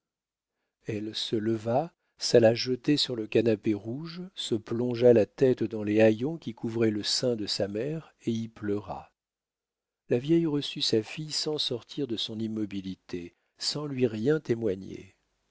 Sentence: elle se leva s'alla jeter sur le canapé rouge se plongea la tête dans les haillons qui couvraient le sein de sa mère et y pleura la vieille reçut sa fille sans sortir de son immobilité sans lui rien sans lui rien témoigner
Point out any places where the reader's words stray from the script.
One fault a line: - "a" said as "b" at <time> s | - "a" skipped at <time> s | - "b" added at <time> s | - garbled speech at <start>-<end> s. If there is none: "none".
- "sans lui rien" skipped at 14.4 s